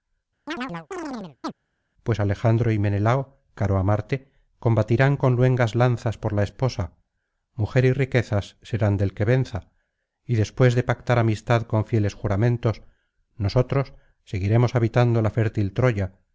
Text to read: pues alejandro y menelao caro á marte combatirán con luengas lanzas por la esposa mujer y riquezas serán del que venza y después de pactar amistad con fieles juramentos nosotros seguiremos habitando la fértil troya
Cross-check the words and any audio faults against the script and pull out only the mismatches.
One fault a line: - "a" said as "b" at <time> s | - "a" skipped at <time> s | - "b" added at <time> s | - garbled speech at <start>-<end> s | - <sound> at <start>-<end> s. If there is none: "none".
- chirp at 0.5-1.5 s